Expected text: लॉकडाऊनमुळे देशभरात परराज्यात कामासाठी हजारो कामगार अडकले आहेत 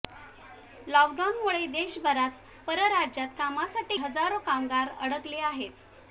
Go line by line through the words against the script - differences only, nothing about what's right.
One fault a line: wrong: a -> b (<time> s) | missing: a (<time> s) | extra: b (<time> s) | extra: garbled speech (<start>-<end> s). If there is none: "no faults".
no faults